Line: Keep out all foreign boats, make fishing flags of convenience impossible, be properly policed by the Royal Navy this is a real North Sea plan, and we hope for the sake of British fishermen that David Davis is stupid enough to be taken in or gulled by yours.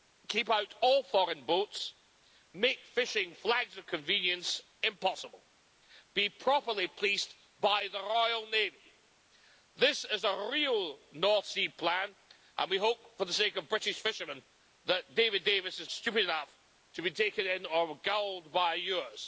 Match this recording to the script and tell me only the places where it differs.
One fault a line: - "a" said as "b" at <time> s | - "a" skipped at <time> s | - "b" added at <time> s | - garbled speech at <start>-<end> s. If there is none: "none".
none